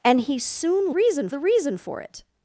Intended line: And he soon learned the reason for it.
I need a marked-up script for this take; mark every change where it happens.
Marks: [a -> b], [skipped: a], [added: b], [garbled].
And he soon [learned -> reason] the reason for it.